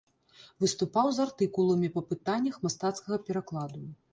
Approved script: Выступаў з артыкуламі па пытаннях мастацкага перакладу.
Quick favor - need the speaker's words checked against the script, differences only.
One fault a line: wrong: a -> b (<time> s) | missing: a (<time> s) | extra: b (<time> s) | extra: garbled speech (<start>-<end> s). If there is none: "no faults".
no faults